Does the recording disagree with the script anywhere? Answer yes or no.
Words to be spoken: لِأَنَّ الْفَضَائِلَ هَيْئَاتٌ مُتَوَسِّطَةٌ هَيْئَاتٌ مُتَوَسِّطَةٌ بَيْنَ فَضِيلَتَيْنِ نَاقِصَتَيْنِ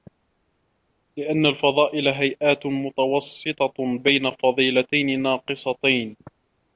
yes